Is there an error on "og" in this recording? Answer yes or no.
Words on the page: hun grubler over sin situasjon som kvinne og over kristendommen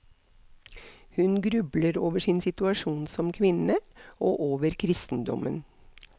no